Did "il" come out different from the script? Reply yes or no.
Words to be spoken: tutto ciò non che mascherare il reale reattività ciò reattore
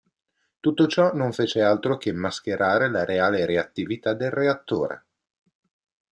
yes